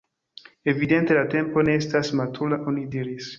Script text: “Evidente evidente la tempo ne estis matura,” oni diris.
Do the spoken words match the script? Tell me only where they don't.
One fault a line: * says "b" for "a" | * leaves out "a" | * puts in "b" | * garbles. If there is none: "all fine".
* leaves out "evidente"
* says "estas" for "estis"